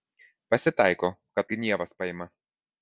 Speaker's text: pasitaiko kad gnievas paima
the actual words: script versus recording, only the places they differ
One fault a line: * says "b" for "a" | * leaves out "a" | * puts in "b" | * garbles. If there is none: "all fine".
all fine